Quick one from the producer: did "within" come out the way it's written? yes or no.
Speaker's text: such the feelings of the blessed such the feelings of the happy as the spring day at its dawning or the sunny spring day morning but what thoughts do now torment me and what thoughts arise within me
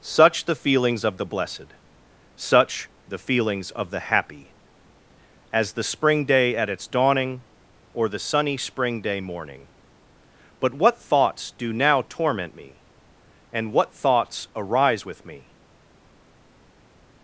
no